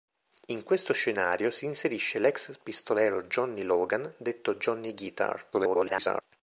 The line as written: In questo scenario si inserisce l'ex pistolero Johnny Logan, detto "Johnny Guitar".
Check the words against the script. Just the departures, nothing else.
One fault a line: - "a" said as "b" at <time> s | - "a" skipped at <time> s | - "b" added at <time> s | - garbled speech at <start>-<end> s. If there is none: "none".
- garbled speech at 5.5-6.2 s